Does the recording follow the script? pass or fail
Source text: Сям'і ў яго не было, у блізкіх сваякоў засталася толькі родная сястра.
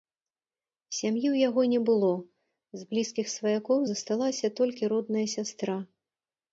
fail